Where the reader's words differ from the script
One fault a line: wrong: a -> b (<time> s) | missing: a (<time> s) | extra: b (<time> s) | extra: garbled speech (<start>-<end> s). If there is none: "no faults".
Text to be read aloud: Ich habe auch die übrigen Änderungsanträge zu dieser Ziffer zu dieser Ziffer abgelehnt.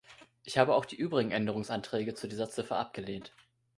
missing: zu dieser Ziffer (2.8 s)